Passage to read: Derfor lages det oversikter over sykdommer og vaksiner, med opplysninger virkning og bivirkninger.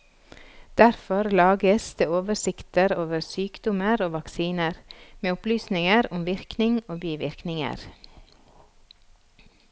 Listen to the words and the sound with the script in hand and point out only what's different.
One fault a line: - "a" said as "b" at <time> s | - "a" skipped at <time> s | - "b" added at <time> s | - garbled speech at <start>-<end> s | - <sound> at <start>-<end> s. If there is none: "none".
- "om" added at 6.1 s